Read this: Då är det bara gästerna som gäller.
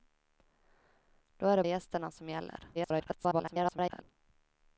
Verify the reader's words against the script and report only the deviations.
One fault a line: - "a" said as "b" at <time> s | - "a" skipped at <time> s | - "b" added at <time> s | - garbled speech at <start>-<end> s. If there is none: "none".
- "bara" skipped at 1.6 s
- garbled speech at 2.7-4.0 s